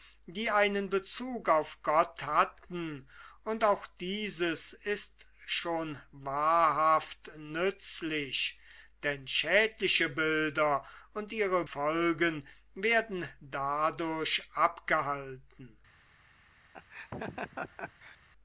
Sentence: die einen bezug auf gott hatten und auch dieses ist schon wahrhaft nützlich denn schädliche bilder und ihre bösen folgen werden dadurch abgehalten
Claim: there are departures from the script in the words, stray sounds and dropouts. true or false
true